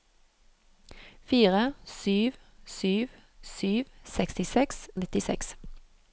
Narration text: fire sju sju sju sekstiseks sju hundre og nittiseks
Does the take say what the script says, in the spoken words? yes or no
no